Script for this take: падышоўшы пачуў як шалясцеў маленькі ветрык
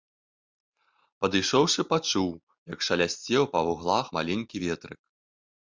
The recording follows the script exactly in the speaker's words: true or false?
false